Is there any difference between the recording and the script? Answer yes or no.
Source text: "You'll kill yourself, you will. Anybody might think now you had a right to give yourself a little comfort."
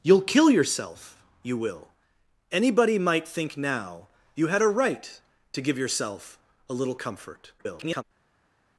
yes